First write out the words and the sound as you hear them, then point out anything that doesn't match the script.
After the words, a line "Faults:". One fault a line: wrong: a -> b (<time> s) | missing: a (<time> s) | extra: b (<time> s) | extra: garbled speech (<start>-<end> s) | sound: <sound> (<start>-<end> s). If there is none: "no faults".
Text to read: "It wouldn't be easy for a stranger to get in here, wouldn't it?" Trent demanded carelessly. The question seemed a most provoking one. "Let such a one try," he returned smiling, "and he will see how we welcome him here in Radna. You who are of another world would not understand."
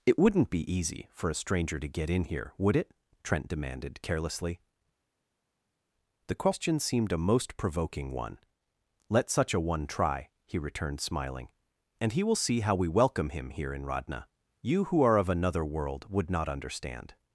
"It wouldn't be easy for a stranger to get in here, would it?" Trent demanded carelessly. The question seemed a most provoking one. "Let such a one try," he returned smiling, "and he will see how we welcome him here in Radna. You who are of another world would not understand."
Faults:
wrong: wouldn't -> would (2.6 s)